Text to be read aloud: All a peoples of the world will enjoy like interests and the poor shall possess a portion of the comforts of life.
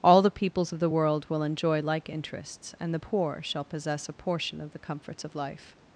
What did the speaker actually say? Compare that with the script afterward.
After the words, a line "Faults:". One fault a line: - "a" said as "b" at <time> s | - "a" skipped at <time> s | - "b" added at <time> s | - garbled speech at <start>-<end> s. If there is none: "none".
All the peoples of the world will enjoy like interests and the poor shall possess a portion of the comforts of life.
Faults:
- "a" said as "the" at 0.2 s